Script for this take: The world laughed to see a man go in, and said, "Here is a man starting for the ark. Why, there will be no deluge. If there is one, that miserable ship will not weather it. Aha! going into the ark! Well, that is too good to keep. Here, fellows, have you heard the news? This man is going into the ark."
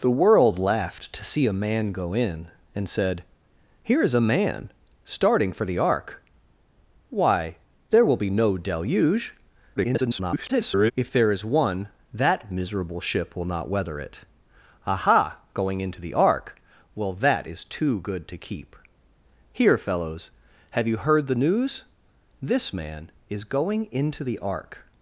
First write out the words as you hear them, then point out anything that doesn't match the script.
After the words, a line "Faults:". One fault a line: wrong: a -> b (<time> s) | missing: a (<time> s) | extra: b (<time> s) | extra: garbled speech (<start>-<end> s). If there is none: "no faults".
The world laughed to see a man go in, and said, "Here is a man starting for the ark. Why, there will be no deluge. [garbled] If there is one, that miserable ship will not weather it. Aha! going into the ark! Well, that is too good to keep. Here, fellows, have you heard the news? This man is going into the ark."
Faults:
extra: garbled speech (9.8-10.9 s)